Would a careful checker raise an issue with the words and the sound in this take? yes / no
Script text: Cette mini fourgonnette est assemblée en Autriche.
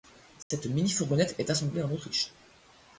yes